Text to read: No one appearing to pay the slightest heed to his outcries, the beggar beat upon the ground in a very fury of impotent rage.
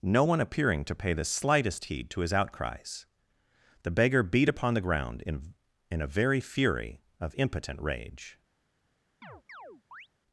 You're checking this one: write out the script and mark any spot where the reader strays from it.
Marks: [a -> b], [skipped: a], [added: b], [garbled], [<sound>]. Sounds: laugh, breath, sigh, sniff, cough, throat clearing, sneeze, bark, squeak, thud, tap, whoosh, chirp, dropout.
No one appearing to pay the slightest heed to his outcries, the beggar beat upon the ground in [added: in] a very fury of impotent rage. [chirp]